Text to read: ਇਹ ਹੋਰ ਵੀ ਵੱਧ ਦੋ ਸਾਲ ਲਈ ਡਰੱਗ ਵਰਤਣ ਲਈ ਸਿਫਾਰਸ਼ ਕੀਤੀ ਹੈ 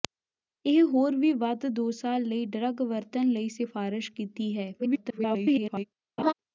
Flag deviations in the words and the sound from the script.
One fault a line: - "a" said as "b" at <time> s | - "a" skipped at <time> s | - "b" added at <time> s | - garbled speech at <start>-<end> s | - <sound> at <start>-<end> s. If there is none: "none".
- garbled speech at 4.8-5.8 s
- laugh at 6.2-6.3 s